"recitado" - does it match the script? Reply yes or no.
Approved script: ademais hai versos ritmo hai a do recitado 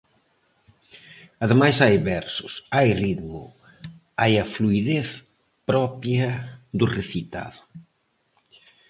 yes